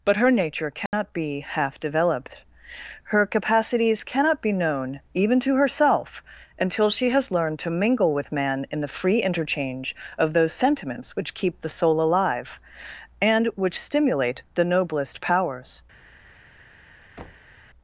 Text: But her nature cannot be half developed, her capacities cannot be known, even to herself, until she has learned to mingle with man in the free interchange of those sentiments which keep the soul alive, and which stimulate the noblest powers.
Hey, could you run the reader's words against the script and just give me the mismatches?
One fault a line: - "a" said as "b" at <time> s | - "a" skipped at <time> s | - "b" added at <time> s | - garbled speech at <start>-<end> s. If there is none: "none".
none